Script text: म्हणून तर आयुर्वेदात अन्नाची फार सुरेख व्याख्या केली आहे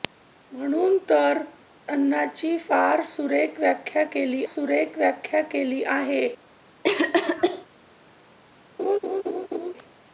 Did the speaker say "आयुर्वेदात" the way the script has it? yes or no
no